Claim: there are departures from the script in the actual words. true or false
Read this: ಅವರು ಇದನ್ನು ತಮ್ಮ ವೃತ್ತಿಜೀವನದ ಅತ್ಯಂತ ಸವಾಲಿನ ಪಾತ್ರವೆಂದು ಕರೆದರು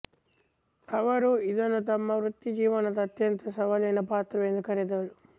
false